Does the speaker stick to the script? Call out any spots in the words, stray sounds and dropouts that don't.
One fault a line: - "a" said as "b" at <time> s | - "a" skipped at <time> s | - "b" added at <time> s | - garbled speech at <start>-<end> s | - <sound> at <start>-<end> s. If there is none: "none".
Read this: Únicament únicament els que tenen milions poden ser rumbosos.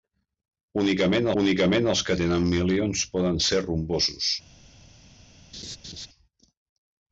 - laugh at 5.5-6.1 s